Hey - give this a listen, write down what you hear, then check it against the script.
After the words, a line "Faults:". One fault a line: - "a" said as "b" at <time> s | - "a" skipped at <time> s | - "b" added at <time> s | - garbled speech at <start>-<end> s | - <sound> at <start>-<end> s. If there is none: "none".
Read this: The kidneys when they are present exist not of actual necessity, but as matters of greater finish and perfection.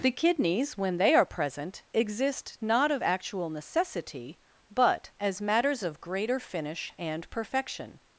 The kidneys when they are present exist not of actual necessity, but as matters of greater finish and perfection.
Faults:
none